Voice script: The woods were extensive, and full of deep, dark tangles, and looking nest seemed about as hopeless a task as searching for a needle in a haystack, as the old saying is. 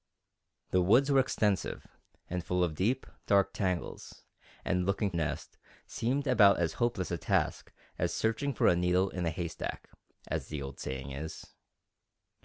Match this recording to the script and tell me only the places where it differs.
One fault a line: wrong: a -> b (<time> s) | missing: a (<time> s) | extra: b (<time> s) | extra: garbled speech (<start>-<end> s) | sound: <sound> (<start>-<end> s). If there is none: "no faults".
no faults